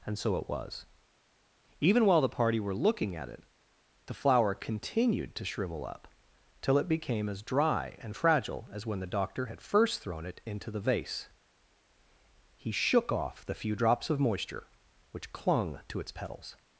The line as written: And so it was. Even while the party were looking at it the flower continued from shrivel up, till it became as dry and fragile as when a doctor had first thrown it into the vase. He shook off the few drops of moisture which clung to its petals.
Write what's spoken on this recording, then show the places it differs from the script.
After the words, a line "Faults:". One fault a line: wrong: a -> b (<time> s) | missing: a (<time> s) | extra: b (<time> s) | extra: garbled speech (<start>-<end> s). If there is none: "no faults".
And so it was. Even while the party were looking at it the flower continued to shrivel up, till it became as dry and fragile as when the doctor had first thrown it into the vase. He shook off the few drops of moisture which clung to its petals.
Faults:
wrong: from -> to (5.3 s)
wrong: a -> the (9.0 s)